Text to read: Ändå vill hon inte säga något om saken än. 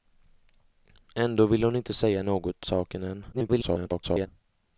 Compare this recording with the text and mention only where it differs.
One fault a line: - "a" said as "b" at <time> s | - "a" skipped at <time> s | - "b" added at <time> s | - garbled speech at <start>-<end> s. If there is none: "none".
- "om" skipped at 2.6 s
- garbled speech at 3.3-4.3 s